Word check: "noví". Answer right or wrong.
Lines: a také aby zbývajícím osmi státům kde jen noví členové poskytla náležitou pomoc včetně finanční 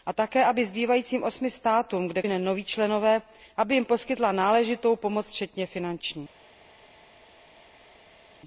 right